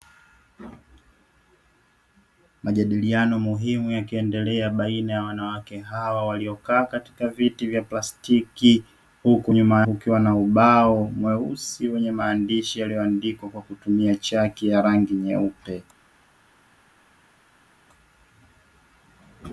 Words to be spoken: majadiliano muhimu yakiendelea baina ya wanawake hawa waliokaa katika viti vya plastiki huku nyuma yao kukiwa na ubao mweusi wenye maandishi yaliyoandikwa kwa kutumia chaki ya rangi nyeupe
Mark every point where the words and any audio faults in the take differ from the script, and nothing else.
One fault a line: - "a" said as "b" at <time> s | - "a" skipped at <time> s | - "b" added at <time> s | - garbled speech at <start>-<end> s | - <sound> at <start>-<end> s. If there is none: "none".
- "yao" skipped at 9.8 s